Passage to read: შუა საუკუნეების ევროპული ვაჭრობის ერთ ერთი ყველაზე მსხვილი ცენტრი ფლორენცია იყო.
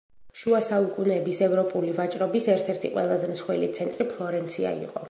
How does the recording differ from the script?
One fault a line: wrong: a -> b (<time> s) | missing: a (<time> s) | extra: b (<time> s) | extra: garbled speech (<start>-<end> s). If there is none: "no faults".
no faults